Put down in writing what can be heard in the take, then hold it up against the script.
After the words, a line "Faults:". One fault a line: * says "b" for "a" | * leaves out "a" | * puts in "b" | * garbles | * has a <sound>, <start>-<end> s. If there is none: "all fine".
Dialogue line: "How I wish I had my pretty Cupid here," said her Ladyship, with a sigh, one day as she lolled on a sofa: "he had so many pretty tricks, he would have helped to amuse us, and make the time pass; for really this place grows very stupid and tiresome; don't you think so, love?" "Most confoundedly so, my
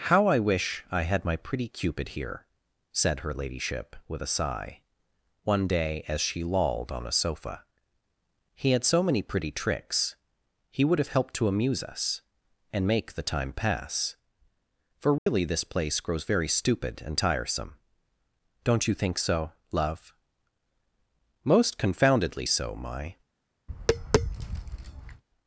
"How I wish I had my pretty Cupid here," said her Ladyship, with a sigh, one day as she lolled on a sofa: "he had so many pretty tricks, he would have helped to amuse us, and make the time pass; for really this place grows very stupid and tiresome; don't you think so, love?" "Most confoundedly so, my
Faults:
* has a dropout, 15.2-15.3 s
* has a tap, 23.7-25.2 s